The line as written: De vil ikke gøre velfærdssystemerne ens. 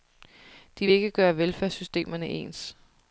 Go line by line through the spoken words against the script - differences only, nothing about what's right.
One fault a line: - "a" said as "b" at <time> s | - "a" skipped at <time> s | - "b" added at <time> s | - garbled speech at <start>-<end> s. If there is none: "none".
none